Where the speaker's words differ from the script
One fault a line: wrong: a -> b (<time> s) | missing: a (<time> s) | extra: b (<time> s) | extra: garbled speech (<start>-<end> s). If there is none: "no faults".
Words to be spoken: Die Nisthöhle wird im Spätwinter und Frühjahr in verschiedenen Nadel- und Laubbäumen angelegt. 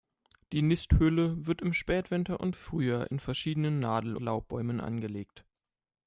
missing: und (4.2 s)